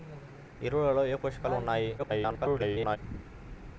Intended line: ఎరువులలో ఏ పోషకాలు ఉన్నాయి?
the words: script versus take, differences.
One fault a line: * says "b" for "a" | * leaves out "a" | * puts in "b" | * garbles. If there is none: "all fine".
* garbles